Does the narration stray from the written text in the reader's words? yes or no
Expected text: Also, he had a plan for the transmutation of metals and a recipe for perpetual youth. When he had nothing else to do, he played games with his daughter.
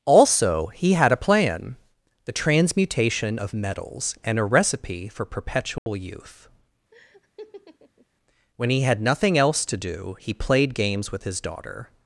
yes